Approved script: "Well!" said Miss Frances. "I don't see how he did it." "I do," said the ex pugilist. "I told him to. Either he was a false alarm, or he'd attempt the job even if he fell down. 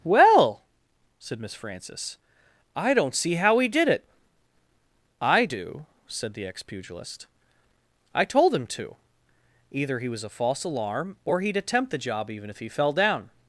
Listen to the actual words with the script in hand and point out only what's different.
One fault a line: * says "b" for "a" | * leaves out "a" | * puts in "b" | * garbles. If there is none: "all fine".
all fine